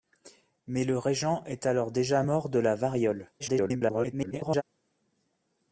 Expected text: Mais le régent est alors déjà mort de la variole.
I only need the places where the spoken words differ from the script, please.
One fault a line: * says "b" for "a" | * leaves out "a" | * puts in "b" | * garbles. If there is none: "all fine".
* garbles